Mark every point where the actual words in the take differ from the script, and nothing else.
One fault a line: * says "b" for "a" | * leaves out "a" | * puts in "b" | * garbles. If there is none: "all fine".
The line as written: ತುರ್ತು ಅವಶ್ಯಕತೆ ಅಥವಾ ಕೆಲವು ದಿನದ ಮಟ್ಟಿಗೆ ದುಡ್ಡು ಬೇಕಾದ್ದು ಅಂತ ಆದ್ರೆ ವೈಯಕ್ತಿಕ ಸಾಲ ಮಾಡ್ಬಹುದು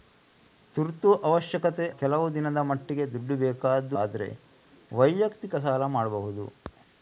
* leaves out "ಅಥವಾ"
* leaves out "ಅಂತ"